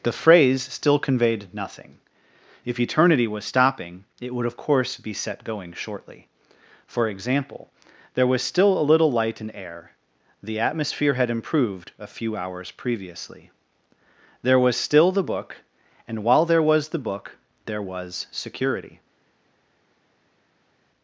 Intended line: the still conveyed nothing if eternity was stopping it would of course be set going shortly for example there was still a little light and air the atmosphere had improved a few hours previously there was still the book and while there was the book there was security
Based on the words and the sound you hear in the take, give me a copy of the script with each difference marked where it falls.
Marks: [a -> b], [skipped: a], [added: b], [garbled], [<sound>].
the [added: phrase] still conveyed nothing if eternity was stopping it would of course be set going shortly for example there was still a little light and air the atmosphere had improved a few hours previously there was still the book and while there was the book there was security